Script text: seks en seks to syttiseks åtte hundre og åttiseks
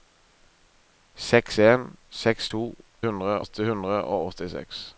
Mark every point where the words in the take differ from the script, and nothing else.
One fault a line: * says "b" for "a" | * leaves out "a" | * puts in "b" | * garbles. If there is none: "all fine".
* says "hundre" for "syttiseks"